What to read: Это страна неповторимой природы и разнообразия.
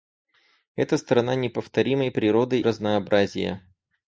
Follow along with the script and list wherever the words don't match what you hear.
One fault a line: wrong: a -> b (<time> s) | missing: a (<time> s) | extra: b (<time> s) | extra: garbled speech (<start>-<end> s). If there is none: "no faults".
missing: и (2.6 s)